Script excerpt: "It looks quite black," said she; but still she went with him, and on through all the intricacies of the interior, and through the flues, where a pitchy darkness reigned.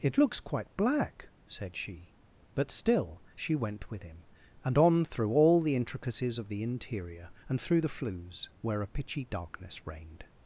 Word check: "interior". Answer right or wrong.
right